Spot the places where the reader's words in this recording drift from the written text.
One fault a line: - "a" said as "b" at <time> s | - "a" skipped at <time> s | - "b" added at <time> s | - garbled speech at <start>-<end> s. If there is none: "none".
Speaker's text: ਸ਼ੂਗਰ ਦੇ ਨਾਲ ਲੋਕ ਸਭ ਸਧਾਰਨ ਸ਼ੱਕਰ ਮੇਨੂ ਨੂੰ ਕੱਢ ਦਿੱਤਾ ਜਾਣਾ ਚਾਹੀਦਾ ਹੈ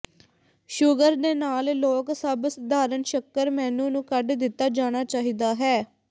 none